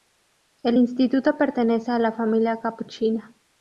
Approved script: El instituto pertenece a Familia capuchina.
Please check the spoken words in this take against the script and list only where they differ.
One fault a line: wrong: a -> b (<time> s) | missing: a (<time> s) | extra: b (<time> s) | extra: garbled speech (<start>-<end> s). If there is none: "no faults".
extra: la (2.0 s)